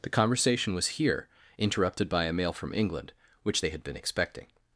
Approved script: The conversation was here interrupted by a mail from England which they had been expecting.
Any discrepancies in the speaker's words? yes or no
no